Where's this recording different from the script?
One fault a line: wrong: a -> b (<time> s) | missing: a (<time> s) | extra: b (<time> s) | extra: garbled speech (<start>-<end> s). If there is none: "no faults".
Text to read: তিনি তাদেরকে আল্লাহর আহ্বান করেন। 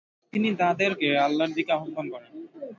extra: দিকে (1.6 s)